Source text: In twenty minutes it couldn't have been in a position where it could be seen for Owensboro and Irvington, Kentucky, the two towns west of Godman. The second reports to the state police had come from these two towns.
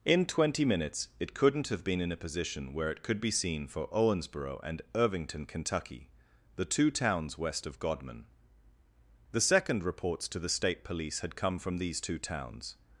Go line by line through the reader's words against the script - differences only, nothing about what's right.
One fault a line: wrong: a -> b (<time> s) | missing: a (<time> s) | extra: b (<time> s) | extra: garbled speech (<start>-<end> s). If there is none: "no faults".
no faults